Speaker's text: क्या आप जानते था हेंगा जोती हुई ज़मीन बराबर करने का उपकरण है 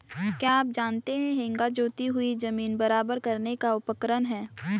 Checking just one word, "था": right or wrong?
wrong